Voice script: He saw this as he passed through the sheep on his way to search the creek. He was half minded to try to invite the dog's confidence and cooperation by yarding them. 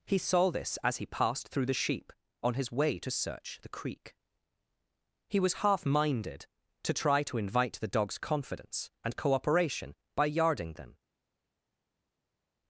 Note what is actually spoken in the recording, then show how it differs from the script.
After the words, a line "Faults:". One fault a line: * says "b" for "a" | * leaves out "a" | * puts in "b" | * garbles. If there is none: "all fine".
He saw this as he passed through the sheep on his way to search the creek. He was half minded to try to invite the dog's confidence and cooperation by yarding them.
Faults:
all fine